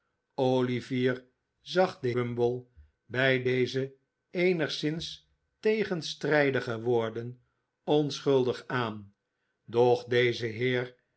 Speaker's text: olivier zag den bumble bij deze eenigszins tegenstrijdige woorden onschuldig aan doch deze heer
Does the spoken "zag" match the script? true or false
true